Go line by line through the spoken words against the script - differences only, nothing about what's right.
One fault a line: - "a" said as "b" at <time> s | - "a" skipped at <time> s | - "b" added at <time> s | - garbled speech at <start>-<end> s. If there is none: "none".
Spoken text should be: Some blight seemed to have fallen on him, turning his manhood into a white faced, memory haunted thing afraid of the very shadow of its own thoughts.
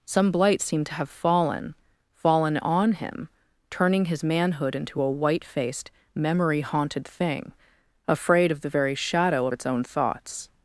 - "fallen" added at 2.1 s